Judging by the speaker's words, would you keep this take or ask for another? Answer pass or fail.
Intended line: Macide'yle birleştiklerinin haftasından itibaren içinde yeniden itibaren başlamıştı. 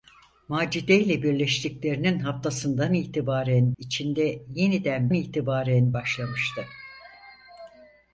pass